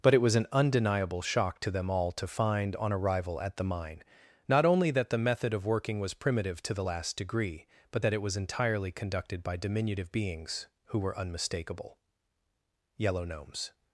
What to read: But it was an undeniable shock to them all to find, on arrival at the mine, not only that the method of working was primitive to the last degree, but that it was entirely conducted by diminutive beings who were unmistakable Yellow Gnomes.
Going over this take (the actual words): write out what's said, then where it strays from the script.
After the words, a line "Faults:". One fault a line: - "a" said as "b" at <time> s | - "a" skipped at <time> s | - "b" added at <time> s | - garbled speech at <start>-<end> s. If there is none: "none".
But it was an undeniable shock to them all to find, on arrival at the mine, not only that the method of working was primitive to the last degree, but that it was entirely conducted by diminutive beings who were unmistakable Yellow Gnomes.
Faults:
none